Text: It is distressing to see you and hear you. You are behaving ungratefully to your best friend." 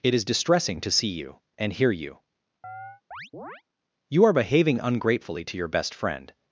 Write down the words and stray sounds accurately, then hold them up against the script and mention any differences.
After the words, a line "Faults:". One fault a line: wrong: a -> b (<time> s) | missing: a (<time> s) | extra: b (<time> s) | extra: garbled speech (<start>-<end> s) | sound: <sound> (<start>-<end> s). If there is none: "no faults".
It is distressing to see you and hear you. You are behaving ungratefully to your best friend."
Faults:
sound: chirp (2.6-3.6 s)